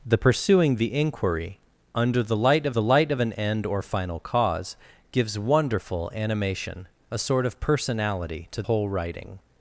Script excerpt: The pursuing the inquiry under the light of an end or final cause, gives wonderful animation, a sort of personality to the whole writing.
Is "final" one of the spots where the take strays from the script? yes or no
no